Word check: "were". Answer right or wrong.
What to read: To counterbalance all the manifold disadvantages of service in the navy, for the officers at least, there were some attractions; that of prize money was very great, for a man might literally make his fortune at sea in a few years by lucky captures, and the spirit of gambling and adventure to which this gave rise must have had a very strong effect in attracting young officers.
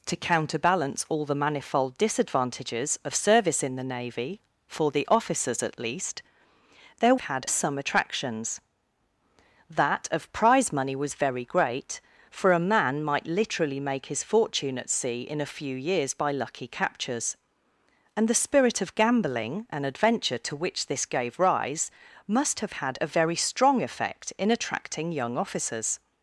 wrong